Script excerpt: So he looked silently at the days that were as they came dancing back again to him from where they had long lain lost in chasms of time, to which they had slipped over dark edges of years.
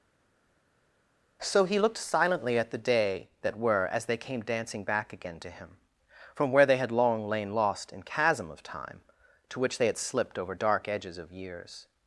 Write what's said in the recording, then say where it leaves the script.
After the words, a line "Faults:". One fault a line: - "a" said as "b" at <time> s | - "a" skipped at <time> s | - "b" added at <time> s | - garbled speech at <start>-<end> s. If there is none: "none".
So he looked silently at the day that were as they came dancing back again to him from where they had long lain lost in chasm of time, to which they had slipped over dark edges of years.
Faults:
- "days" said as "day" at 2.8 s
- "chasms" said as "chasm" at 8.0 s